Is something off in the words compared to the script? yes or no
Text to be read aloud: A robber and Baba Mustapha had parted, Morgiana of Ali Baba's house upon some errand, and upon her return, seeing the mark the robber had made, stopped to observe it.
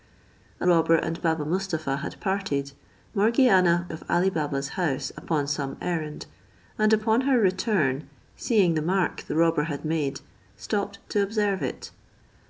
no